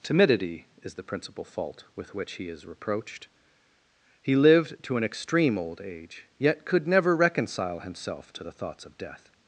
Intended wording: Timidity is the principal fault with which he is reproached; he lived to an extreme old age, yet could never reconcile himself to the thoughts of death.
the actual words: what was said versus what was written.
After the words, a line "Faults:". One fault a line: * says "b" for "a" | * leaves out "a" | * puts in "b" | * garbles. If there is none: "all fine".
Timidity is the principal fault with which he is reproached; he lived to an extreme old age, yet could never reconcile himself to the thoughts of death.
Faults:
all fine